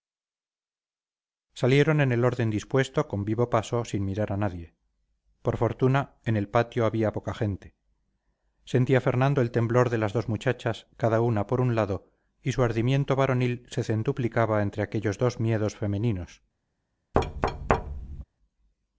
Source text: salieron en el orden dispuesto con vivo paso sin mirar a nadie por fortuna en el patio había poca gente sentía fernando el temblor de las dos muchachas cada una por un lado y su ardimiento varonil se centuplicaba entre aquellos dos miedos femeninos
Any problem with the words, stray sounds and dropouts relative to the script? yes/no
yes